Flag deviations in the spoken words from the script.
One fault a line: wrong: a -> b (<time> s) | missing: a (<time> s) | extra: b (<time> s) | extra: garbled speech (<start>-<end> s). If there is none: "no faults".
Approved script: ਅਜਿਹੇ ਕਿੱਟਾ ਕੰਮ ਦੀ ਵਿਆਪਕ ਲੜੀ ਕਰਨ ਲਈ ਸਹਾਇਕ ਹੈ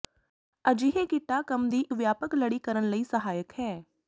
no faults